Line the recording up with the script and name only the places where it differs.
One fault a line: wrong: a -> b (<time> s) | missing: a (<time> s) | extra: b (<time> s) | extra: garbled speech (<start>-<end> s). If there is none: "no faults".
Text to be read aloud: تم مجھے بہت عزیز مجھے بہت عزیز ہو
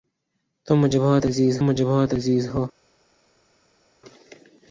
no faults